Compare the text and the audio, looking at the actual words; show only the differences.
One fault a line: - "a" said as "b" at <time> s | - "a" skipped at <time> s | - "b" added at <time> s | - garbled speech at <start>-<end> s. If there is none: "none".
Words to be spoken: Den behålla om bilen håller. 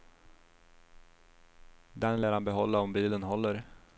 - "lär han" added at 2.2 s